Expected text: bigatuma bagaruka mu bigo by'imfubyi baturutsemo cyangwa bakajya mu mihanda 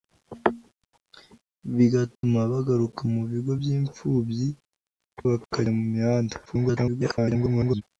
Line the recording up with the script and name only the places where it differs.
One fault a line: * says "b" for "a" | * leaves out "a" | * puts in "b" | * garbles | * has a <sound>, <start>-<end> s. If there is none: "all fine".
* has a dropout, 2.2-2.2 s
* leaves out "baturutsemo cyangwa"
* garbles